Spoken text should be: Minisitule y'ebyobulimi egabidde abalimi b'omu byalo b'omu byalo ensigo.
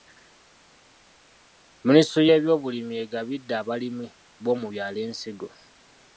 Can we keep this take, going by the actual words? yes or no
no